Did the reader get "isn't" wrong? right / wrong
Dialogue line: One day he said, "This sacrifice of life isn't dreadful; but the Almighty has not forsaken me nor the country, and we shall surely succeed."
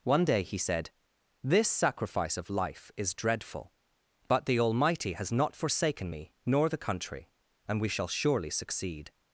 wrong